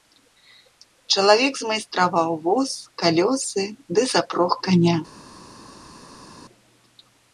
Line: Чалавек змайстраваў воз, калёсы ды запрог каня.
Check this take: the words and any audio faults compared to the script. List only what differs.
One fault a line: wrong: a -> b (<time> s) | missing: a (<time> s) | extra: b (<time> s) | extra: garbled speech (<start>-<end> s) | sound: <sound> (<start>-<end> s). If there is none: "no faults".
no faults